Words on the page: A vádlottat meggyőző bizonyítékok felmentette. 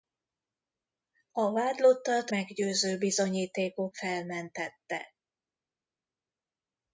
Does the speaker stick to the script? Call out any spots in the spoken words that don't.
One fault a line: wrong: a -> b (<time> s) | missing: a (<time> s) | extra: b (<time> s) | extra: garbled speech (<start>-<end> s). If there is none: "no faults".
no faults